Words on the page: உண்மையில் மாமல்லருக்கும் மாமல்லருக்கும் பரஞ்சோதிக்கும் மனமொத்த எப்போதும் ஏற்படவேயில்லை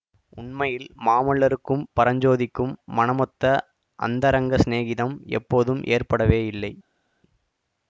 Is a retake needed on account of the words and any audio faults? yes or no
yes